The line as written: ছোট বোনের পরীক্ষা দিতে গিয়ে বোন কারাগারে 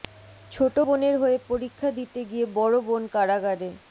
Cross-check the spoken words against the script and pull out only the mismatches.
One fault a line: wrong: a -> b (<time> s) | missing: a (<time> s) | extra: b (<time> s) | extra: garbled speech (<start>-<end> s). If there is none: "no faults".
extra: হয়ে (1.2 s)
extra: বড় (2.6 s)